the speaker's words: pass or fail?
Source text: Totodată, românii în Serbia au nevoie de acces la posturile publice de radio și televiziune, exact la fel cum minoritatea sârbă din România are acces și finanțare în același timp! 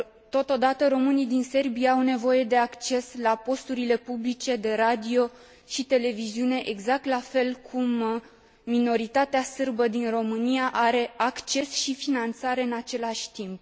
fail